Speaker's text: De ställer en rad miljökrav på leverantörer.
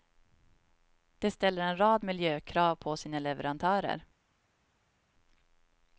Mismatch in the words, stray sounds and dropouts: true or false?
true